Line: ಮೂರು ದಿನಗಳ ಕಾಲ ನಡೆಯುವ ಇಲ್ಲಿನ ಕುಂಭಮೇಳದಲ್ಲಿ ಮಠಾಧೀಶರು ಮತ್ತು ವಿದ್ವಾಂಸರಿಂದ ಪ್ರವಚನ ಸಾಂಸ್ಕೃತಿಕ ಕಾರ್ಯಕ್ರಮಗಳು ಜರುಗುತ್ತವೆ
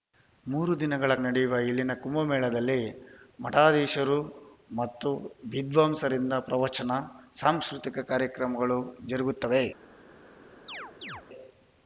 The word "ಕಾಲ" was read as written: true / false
false